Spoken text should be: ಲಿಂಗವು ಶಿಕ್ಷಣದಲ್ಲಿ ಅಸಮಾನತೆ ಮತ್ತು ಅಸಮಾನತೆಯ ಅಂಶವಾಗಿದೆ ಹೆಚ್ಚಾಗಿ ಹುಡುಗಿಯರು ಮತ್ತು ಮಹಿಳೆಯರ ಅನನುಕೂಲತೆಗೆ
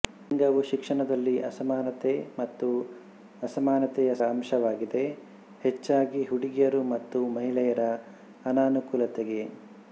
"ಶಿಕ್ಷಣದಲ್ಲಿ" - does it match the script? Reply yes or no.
yes